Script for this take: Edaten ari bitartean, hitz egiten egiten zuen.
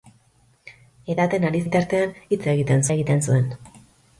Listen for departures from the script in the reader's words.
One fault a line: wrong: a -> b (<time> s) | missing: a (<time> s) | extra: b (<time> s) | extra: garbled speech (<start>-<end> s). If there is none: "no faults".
no faults